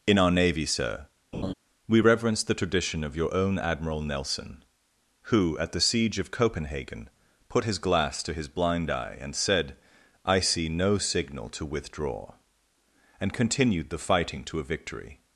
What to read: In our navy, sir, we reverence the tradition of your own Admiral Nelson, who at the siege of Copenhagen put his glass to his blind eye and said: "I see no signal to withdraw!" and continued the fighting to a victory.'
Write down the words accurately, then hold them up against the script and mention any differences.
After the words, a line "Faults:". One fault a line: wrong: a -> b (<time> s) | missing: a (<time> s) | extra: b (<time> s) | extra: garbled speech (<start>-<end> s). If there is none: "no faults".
In our navy, sir, we reverence the tradition of your own Admiral Nelson, who at the siege of Copenhagen put his glass to his blind eye and said: "I see no signal to withdraw!" and continued the fighting to a victory.'
Faults:
no faults